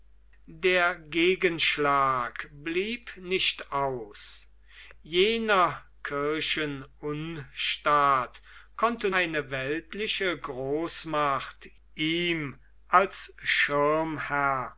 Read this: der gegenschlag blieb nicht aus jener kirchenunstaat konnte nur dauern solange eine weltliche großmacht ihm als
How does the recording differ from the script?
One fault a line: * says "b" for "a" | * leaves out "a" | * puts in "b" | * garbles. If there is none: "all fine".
* leaves out "nur dauern solange"